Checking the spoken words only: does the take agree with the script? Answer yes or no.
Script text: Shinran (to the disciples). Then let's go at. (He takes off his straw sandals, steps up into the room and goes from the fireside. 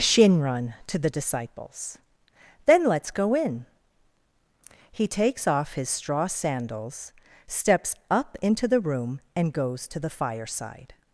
no